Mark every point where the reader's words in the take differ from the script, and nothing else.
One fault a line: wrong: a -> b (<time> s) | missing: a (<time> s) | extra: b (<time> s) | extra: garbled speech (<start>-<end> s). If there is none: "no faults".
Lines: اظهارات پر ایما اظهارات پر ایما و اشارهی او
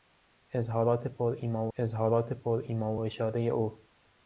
no faults